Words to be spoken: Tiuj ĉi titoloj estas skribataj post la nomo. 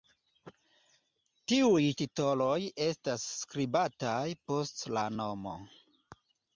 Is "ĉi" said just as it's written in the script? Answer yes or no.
no